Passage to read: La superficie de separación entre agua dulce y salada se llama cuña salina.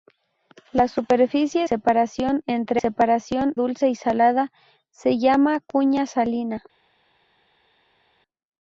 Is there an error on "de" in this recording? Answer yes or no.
yes